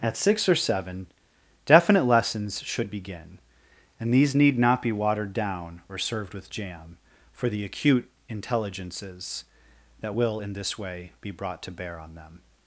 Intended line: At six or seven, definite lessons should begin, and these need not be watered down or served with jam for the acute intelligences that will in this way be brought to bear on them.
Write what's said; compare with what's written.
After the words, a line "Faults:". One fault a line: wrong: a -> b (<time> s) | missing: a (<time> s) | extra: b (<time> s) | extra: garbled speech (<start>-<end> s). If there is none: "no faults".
At six or seven, definite lessons should begin, and these need not be watered down or served with jam for the acute intelligences that will in this way be brought to bear on them.
Faults:
no faults